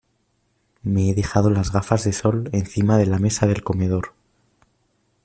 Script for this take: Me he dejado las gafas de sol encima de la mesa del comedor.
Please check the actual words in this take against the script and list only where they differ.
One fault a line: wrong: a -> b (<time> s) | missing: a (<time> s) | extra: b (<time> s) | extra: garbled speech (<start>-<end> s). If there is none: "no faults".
no faults